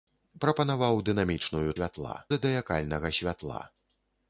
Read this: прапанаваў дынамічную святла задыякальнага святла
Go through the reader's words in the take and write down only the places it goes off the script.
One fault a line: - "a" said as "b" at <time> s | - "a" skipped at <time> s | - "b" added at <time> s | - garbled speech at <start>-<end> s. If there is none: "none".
none